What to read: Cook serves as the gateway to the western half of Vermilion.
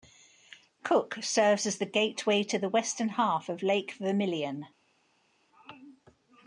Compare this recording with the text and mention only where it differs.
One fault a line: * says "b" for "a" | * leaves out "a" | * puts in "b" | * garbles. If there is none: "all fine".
* puts in "Lake"